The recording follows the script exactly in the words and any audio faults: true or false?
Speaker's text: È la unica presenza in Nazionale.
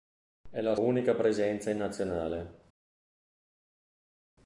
true